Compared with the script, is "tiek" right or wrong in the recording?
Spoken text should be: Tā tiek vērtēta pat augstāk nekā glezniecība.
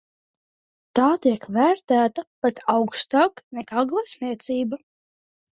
right